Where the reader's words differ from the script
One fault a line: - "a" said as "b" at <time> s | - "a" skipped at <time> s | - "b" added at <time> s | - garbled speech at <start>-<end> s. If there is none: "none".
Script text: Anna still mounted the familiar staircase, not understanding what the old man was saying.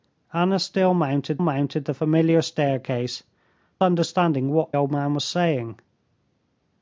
- "mounted" added at 1.4 s
- "not" skipped at 3.2 s
- "the" skipped at 4.7 s